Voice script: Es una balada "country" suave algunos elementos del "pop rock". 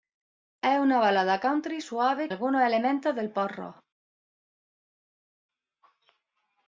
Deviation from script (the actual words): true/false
false